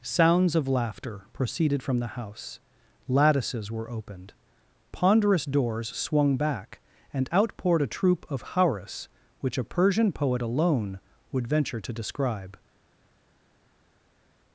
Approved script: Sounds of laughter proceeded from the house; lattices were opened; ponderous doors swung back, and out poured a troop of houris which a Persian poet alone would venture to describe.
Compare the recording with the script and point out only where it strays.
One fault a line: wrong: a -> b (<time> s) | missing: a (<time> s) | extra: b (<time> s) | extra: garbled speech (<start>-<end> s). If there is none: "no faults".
no faults